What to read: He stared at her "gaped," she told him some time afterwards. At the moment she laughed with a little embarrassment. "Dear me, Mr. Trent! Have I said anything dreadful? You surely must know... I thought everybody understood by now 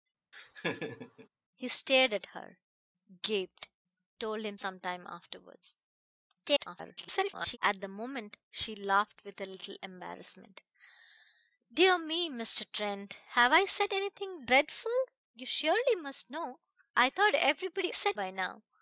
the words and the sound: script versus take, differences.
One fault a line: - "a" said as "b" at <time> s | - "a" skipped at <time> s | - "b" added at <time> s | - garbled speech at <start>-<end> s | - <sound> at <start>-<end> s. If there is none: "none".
- laugh at 0.3-1.3 s
- "she" skipped at 3.7 s
- garbled speech at 6.4-7.6 s
- "understood" said as "said" at 17.9 s